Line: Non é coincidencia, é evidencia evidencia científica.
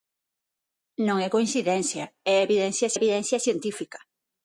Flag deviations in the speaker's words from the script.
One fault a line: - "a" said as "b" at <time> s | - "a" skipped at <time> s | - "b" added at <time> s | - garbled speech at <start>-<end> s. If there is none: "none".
none